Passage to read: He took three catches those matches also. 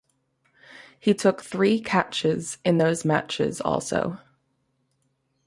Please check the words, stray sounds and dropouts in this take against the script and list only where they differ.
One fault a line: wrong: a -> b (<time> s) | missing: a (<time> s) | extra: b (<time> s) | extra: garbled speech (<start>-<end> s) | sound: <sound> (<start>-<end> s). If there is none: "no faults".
extra: in (2.6 s)